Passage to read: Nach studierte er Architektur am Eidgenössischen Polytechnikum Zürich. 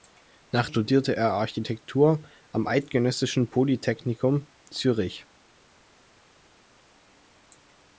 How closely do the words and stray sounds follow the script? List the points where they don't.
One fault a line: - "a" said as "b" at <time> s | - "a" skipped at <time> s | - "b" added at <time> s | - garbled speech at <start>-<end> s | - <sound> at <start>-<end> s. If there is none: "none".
none